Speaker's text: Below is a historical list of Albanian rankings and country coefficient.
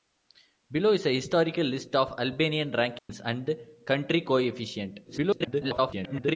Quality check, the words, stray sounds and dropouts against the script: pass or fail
fail